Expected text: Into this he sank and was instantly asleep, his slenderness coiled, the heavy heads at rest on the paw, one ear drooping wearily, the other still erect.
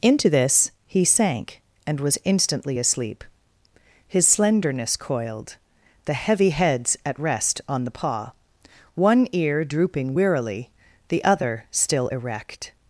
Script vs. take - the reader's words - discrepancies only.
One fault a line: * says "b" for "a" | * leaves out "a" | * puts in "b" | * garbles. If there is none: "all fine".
all fine